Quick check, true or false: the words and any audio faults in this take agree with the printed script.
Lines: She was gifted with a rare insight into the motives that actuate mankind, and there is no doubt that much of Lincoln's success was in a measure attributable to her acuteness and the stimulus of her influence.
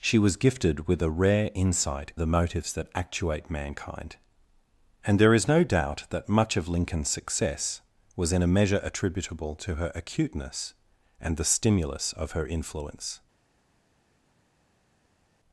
false